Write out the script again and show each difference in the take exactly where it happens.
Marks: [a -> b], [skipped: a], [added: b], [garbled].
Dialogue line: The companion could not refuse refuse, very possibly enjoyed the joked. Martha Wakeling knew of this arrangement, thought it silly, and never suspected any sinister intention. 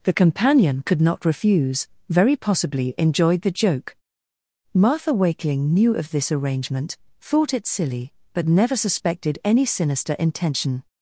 The companion could not refuse [skipped: refuse,] very possibly enjoyed the [joked. -> joke] Martha Wakeling knew of this arrangement, thought it silly, [and -> but] never suspected any sinister intention.